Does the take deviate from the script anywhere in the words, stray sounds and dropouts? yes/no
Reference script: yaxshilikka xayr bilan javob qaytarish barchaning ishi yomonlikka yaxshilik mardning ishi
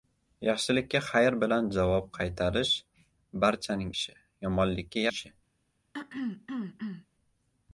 yes